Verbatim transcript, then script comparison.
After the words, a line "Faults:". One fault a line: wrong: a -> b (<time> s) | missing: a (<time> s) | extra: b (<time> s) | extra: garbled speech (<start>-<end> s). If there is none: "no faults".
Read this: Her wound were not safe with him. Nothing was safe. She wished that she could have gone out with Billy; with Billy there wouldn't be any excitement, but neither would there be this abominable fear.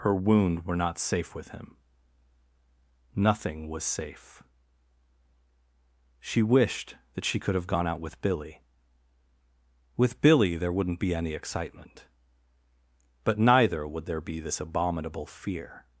Her wound were not safe with him. Nothing was safe. She wished that she could have gone out with Billy; with Billy there wouldn't be any excitement, but neither would there be this abominable fear.
Faults:
no faults